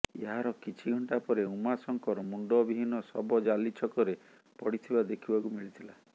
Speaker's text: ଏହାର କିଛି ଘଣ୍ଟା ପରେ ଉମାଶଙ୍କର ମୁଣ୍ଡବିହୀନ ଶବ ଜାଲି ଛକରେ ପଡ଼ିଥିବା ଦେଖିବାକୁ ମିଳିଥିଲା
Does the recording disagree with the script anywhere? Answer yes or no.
no